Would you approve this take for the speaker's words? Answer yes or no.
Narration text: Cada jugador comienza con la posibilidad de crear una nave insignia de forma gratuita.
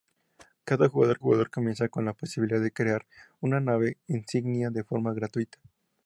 no